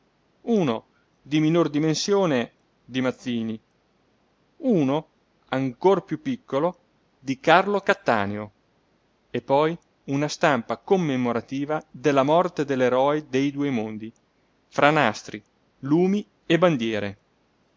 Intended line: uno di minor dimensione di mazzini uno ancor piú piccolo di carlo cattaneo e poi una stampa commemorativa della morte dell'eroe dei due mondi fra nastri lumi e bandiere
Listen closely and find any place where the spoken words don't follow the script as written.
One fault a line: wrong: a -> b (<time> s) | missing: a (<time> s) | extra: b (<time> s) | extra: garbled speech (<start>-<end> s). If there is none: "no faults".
no faults